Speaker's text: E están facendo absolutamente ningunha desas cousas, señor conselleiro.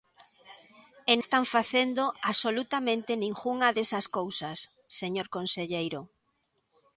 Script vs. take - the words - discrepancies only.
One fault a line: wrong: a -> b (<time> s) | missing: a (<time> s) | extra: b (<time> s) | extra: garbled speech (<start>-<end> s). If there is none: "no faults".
no faults